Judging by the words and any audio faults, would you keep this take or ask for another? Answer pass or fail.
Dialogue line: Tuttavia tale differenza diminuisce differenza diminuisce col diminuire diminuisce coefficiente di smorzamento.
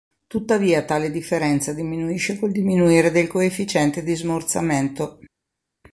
fail